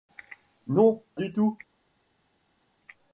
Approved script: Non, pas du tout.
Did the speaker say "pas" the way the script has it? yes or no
no